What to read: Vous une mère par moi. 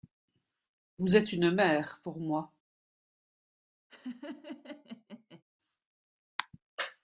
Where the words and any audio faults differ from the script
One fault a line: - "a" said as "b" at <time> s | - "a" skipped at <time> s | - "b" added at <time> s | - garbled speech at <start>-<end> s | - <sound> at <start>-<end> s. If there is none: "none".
- "êtes" added at 1.1 s
- "par" said as "pour" at 2.0 s
- laugh at 3.9-5.4 s